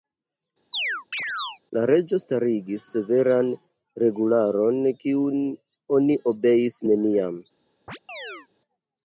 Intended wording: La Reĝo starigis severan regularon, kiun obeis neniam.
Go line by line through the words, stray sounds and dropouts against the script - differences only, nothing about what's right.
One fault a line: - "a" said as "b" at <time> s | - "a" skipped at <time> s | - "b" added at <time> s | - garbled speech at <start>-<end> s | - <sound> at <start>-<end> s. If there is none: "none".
- chirp at 0.7-1.6 s
- "oni" added at 6.0 s
- chirp at 7.9-8.5 s